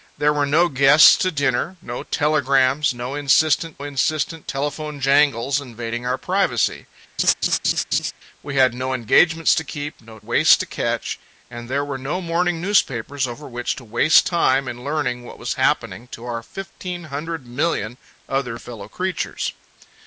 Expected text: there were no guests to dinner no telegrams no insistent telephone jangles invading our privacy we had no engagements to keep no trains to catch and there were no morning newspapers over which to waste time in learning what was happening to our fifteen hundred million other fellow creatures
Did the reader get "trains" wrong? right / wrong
wrong